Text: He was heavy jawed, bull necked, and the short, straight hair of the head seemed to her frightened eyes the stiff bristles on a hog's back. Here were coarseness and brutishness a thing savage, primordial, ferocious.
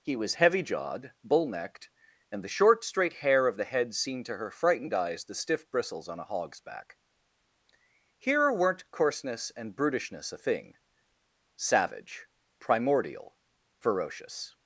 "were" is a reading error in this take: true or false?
true